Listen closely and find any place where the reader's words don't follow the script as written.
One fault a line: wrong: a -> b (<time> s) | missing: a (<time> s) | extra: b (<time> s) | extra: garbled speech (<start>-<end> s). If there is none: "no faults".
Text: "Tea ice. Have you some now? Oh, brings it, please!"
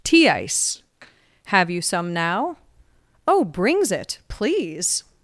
no faults